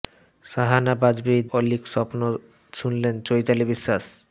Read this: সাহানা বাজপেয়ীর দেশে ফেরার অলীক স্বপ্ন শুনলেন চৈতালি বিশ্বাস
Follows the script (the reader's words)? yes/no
no